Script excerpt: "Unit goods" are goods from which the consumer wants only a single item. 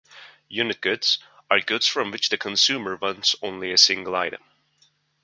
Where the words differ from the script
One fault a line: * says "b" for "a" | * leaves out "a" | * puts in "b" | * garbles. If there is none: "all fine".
all fine